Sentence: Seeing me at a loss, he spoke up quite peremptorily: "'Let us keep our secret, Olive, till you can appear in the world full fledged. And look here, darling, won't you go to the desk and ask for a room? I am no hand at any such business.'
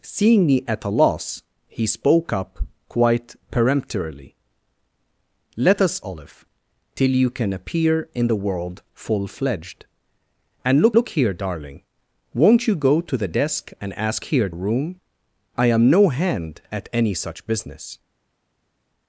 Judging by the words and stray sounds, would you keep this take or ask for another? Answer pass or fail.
fail